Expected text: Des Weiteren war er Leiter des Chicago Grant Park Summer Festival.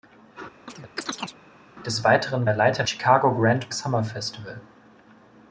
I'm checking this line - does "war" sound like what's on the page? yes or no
no